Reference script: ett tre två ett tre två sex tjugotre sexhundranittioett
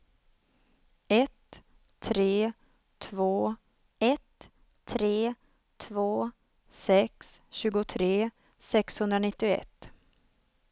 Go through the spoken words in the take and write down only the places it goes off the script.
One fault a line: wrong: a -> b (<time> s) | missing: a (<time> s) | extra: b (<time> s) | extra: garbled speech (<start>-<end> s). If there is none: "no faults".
no faults